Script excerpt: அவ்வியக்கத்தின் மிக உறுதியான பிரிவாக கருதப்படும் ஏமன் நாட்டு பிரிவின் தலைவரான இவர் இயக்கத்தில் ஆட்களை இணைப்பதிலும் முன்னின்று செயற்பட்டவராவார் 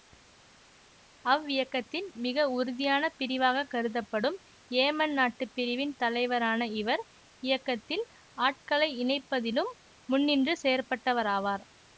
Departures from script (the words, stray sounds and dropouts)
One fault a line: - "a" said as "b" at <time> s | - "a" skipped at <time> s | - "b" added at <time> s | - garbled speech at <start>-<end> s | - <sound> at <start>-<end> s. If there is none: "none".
none